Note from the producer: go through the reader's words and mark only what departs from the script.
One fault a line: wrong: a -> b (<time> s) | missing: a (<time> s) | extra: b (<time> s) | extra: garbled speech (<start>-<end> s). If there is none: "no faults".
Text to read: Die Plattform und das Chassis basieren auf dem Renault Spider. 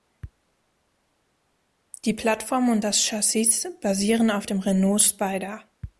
no faults